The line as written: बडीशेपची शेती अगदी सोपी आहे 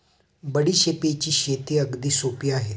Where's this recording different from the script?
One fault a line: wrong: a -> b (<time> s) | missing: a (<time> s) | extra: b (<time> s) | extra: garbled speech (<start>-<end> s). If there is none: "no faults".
no faults